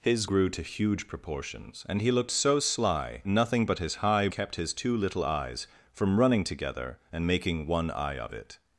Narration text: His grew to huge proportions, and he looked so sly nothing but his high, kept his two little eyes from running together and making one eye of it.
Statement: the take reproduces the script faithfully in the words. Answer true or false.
true